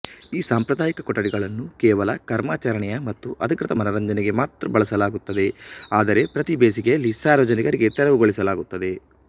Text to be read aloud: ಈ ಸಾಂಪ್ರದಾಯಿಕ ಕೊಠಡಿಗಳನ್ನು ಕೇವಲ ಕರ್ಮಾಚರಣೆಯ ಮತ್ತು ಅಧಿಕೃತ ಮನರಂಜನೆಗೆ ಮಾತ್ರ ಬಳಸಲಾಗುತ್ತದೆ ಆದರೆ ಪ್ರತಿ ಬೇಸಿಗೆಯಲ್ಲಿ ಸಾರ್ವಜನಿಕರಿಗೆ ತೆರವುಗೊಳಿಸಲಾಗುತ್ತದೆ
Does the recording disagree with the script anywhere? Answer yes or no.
no